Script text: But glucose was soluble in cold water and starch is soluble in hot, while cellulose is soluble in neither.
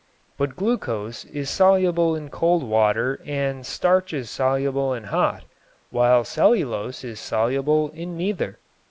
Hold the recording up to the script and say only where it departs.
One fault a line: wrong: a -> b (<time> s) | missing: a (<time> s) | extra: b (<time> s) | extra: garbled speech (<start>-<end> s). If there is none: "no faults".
wrong: was -> is (1.2 s)